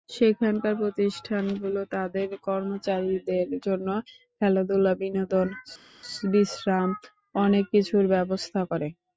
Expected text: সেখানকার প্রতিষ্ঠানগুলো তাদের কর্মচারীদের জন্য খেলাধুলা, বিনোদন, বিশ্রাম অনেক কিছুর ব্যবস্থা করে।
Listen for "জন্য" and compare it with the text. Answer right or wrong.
right